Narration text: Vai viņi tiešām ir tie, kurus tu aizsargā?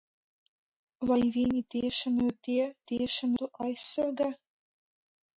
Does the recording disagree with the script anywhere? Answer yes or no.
yes